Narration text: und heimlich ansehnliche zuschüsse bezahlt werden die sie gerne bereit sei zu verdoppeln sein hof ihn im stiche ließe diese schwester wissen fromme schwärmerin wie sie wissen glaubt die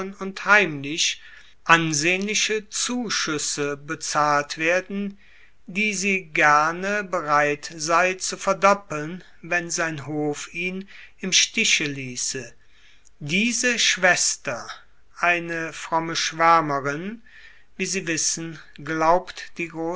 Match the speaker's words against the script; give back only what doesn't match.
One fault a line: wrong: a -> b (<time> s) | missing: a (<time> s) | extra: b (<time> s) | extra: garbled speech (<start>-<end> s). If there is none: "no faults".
extra: wenn (9.4 s)
wrong: wissen -> eine (15.2 s)